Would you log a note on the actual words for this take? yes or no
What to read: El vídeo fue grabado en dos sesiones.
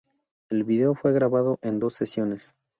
no